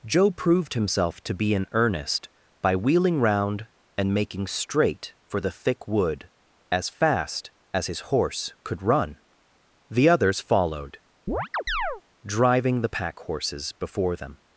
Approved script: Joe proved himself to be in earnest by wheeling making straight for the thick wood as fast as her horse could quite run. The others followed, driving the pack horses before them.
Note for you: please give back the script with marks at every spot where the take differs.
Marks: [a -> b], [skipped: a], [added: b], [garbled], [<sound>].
Joe proved himself to be in earnest by wheeling [added: round and] making straight for the thick wood as fast as [her -> his] horse could [skipped: quite] run. The others followed, [chirp] driving the pack horses before them.